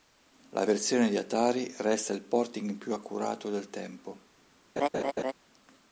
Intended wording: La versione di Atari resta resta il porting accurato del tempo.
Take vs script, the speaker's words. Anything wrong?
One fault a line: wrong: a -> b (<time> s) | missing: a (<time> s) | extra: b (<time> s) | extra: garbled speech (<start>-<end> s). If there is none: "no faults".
missing: resta (2.1 s)
extra: più (2.8 s)